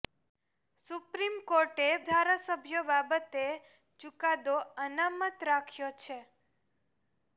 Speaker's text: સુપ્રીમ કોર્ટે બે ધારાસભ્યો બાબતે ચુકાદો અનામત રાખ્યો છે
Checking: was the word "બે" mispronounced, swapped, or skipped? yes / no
yes